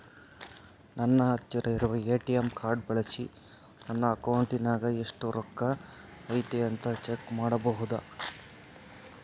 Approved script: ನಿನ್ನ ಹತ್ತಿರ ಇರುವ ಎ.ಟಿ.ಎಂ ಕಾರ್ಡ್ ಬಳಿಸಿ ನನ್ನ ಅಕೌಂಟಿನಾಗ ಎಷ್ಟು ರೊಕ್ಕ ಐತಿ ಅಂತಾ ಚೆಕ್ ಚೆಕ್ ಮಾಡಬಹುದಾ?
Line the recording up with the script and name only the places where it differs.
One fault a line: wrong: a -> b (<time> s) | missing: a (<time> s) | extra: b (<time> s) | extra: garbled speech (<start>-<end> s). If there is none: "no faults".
wrong: ನಿನ್ನ -> ನನ್ನ (0.9 s)
missing: ಚೆಕ್ (7.3 s)